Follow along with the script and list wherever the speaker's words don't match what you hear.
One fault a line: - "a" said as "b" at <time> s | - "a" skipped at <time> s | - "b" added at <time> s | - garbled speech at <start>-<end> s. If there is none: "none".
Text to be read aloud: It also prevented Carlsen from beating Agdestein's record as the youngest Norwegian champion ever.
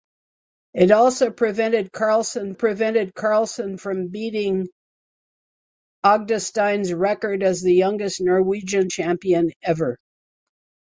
- "prevented Carlsen" added at 2.5 s